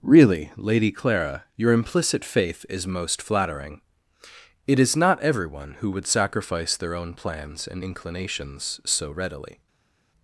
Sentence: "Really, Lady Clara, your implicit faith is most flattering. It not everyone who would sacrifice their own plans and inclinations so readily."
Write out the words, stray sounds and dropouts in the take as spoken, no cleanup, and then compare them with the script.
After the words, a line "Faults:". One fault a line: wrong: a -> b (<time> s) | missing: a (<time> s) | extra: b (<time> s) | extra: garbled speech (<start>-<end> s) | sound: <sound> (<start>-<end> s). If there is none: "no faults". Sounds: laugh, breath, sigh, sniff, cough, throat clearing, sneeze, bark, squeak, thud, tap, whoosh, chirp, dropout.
"Really, Lady Clara, your implicit faith is most flattering. It is not everyone who would sacrifice their own plans and inclinations so readily."
Faults:
extra: is (4.8 s)